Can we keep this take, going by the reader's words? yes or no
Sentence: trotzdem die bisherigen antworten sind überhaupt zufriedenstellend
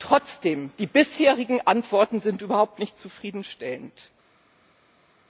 no